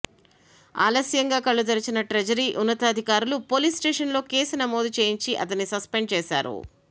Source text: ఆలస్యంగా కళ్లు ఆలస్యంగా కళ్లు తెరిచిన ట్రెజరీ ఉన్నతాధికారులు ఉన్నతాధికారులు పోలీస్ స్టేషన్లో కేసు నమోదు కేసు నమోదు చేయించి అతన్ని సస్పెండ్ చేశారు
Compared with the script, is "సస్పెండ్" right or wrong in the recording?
right